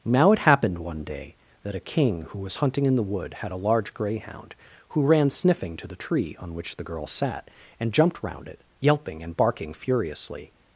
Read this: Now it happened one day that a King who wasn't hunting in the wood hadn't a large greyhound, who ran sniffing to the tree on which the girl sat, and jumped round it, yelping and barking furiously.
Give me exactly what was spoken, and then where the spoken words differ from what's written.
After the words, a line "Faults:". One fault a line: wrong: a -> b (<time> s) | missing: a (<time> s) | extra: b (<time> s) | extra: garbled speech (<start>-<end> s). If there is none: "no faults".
Now it happened one day that a King who was hunting in the wood had a large greyhound, who ran sniffing to the tree on which the girl sat, and jumped round it, yelping and barking furiously.
Faults:
wrong: wasn't -> was (2.4 s)
wrong: hadn't -> had (3.4 s)